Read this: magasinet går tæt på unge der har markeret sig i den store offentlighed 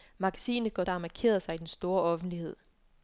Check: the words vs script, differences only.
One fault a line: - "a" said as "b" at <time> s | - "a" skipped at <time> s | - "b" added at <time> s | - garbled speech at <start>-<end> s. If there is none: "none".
- "tæt på unge" skipped at 0.8 s